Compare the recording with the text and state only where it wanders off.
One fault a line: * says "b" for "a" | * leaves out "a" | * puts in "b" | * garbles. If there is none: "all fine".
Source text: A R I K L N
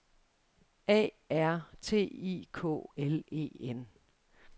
* puts in "T"
* puts in "E"